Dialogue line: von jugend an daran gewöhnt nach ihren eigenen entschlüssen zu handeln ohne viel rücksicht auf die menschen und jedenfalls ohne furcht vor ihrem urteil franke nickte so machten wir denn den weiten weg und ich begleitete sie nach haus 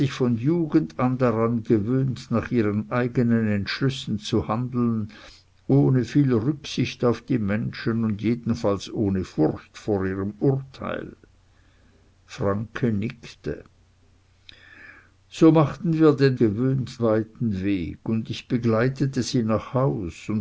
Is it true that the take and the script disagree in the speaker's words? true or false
true